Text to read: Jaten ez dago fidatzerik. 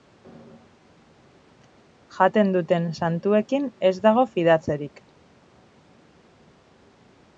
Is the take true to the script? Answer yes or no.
no